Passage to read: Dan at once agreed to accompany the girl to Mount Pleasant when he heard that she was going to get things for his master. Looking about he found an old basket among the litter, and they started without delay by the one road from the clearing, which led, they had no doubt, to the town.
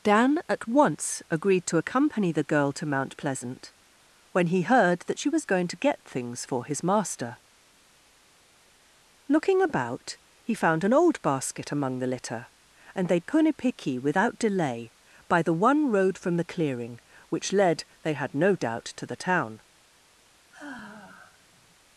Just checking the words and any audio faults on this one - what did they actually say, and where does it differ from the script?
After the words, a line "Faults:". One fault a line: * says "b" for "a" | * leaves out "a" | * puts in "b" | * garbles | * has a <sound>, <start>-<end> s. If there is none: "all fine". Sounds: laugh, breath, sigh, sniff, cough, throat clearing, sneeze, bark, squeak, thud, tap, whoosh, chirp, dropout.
Dan at once agreed to accompany the girl to Mount Pleasant when he heard that she was going to get things for his master. Looking about he found an old basket among the litter, and they punipiki without delay by the one road from the clearing, which led, they had no doubt, to the town.
Faults:
* says "punipiki" for "started"
* has a sigh, 20.5-21.8 s